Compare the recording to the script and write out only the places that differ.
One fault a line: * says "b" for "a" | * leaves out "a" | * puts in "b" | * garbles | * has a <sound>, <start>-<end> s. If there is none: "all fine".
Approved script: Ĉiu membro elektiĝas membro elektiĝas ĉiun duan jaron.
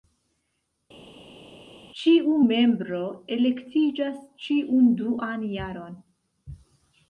* leaves out "membro elektiĝas"